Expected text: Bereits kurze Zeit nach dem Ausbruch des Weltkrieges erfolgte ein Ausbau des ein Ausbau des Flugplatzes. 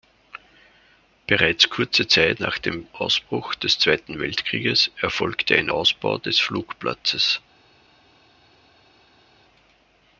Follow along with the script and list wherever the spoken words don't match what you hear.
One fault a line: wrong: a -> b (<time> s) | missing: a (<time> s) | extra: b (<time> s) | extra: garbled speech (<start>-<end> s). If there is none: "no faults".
extra: Zweiten (3.8 s)
missing: ein Ausbau des (6.4 s)